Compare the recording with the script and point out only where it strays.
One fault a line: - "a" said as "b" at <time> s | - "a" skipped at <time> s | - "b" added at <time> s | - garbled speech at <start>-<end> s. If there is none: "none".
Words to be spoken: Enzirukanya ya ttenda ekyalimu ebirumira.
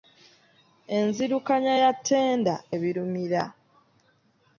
- "ekyalimu" skipped at 2.5 s